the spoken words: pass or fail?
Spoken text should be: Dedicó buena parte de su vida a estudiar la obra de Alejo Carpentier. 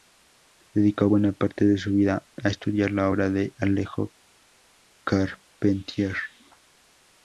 pass